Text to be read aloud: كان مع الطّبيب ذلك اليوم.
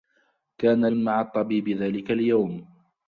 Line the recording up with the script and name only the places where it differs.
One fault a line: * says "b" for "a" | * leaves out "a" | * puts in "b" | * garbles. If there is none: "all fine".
all fine